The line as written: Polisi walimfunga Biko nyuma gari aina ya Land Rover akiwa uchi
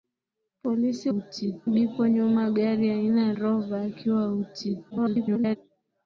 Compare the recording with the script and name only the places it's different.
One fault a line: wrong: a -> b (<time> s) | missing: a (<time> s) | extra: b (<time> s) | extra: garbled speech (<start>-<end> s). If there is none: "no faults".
wrong: walimfunga -> uchi (1.1 s)
missing: Land (3.3 s)
extra: garbled speech (4.9-5.6 s)